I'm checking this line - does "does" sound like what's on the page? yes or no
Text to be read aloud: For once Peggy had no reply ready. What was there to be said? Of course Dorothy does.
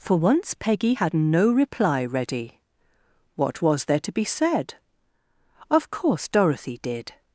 no